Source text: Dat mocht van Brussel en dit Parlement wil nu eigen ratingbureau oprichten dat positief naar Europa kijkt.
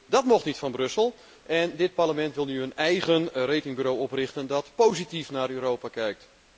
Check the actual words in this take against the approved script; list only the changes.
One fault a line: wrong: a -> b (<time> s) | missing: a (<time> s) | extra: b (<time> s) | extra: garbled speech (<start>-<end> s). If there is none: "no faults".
extra: niet (0.5 s)
extra: een (2.6 s)